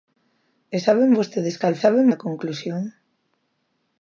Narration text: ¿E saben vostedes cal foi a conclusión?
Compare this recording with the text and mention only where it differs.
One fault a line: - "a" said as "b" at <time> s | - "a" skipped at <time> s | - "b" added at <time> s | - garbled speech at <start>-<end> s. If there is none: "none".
- "foi" said as "saben" at 1.8 s